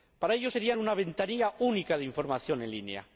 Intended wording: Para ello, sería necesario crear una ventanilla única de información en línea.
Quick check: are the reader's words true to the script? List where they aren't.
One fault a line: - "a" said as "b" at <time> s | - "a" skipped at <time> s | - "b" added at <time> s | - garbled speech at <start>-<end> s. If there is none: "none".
- "necesario crear" skipped at 0.7 s